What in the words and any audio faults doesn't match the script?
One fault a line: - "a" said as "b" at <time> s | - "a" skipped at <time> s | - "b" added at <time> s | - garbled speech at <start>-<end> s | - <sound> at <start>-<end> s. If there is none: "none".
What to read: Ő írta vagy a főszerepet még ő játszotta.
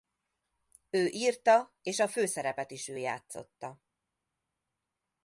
- "vagy" said as "és" at 1.8 s
- "még" said as "is" at 2.7 s